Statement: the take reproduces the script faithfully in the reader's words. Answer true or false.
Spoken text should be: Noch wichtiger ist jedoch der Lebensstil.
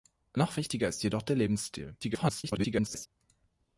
false